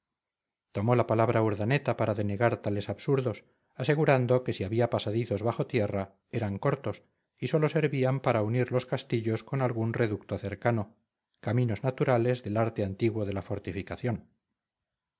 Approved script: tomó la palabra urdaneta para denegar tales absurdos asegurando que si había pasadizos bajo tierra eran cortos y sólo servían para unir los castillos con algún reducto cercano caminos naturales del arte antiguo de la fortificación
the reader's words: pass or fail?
pass